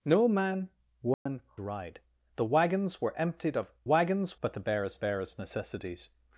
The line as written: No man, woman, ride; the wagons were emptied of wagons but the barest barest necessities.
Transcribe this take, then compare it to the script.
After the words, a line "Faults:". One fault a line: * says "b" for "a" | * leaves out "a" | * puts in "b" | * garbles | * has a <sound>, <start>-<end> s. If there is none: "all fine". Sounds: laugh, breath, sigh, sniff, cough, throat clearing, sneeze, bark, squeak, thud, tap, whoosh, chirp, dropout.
No man, woman, ride; the wagons were emptied of wagons but the barest barest necessities.
Faults:
* has a dropout, 1.1-1.3 s